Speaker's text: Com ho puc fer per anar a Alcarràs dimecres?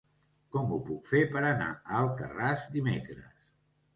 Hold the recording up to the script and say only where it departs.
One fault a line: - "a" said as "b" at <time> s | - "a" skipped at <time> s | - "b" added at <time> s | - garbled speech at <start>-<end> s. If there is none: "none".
none